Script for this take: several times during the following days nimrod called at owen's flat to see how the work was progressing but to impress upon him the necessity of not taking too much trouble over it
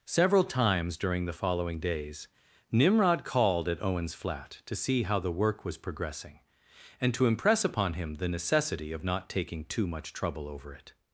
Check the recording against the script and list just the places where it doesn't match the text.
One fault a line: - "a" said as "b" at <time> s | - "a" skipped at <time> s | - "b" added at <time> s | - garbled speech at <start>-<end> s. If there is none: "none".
- "but" said as "and" at 7.0 s